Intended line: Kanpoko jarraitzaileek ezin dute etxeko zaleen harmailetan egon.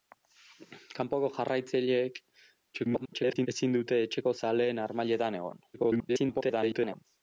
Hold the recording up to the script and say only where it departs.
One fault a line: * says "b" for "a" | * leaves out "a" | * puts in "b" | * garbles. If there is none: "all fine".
* garbles
* garbles